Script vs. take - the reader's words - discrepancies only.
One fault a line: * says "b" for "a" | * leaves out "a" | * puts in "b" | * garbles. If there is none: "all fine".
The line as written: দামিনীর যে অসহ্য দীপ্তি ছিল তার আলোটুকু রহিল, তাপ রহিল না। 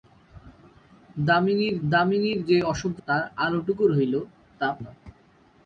* puts in "দামিনীর"
* leaves out "দীপ্তি ছিল"
* leaves out "রহিল"